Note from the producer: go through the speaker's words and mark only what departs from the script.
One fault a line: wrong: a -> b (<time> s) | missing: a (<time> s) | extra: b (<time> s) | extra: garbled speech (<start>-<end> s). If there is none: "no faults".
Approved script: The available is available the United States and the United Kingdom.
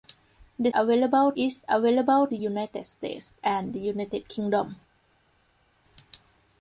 no faults